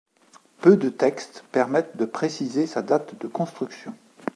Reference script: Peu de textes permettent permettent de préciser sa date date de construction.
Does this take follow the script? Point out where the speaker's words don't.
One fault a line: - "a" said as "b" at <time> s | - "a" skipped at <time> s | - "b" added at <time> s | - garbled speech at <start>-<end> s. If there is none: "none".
- "permettent" skipped at 1.9 s
- "date" skipped at 3.2 s